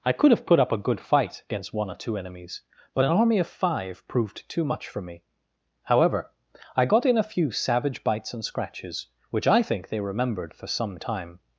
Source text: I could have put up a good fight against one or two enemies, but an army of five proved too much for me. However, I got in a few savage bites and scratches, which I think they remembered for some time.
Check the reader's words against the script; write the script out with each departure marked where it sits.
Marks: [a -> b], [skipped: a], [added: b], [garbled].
I could have put up a good fight against one or two enemies, but an army of five proved too much for me. However, I got in a few savage bites and scratches, which I think they remembered for some time.